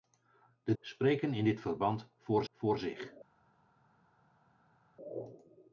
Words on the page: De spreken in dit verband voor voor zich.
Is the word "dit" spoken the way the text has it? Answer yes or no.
yes